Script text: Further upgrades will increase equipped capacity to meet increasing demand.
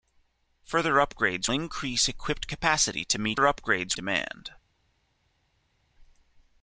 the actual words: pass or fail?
fail